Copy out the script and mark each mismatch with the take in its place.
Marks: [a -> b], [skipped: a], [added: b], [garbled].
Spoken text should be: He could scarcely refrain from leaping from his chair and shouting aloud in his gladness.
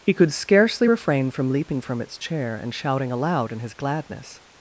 He could scarcely refrain from leaping from [his -> its] chair and shouting aloud in his gladness.